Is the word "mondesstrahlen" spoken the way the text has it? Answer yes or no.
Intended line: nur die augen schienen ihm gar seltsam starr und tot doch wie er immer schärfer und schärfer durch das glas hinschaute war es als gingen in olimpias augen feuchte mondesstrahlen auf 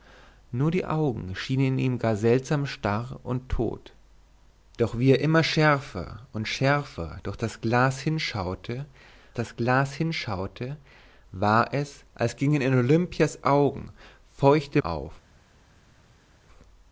no